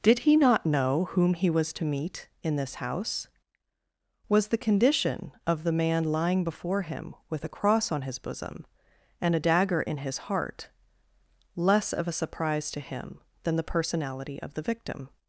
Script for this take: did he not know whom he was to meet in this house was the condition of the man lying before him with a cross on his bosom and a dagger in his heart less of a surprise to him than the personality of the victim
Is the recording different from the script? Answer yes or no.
no